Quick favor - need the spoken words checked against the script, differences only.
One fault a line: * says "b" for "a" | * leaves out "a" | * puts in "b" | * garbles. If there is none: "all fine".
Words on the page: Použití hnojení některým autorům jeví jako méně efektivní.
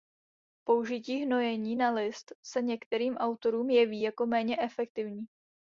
* puts in "na list se"